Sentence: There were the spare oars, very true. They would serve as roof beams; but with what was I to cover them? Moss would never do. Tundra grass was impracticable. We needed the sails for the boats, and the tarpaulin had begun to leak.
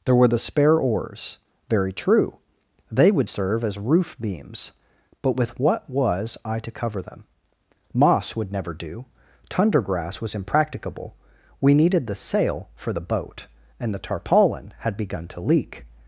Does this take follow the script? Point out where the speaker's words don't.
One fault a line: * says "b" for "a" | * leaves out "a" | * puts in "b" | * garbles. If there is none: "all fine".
* says "sail" for "sails"
* says "boat" for "boats"